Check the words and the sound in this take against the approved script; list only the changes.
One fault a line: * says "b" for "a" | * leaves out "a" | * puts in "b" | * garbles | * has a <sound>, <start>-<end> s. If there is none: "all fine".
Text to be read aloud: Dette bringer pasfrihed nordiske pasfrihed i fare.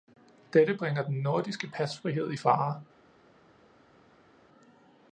* says "den" for "pasfrihed"